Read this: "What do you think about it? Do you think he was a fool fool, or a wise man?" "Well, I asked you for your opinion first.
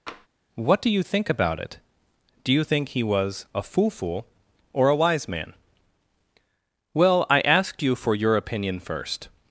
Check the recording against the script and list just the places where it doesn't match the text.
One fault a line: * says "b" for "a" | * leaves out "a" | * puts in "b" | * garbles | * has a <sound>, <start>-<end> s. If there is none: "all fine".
* has a tap, 0.1-0.3 s